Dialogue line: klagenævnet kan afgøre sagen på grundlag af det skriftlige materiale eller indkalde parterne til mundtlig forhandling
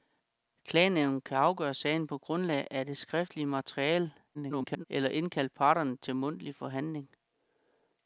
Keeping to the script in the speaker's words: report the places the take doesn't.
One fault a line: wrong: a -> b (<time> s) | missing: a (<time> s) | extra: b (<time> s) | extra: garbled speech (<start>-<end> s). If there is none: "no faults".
extra: garbled speech (4.3-4.8 s)